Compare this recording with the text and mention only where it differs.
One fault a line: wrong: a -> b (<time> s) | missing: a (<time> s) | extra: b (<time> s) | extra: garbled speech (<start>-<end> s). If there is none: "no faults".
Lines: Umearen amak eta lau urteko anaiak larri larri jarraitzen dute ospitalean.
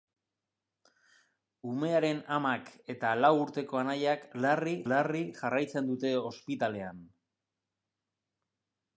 no faults